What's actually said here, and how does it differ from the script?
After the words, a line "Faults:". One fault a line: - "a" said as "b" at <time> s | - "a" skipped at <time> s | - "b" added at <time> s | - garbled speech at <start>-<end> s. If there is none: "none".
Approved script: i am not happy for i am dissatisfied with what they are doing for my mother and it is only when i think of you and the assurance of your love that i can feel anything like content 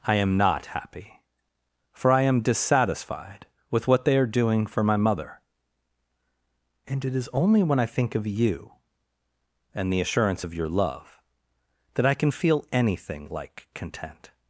i am not happy for i am dissatisfied with what they are doing for my mother and it is only when i think of you and the assurance of your love that i can feel anything like content
Faults:
none